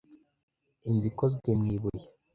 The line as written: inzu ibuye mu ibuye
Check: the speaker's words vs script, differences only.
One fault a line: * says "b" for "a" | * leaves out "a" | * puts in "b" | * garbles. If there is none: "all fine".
* says "ikozwe" for "ibuye"